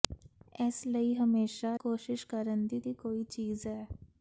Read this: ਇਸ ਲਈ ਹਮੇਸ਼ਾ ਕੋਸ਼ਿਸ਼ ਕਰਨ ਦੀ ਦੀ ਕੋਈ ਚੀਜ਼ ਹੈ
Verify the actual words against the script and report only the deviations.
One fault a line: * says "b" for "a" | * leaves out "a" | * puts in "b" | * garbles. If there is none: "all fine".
all fine